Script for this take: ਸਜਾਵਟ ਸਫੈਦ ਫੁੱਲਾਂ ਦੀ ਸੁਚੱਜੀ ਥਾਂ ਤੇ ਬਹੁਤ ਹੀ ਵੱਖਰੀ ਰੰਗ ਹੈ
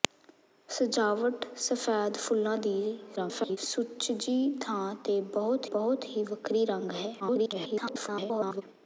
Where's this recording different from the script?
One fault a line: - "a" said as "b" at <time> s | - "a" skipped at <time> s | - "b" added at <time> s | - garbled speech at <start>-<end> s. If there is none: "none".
- garbled speech at 3.2-3.6 s
- "ਬਹੁਤ" added at 5.7 s
- garbled speech at 7.2-8.6 s